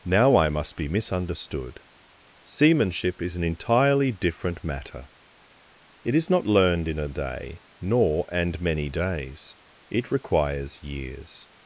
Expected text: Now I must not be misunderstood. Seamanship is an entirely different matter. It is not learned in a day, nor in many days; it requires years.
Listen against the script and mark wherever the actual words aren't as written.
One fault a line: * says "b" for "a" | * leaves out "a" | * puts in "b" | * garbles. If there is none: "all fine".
* leaves out "not"
* says "and" for "in"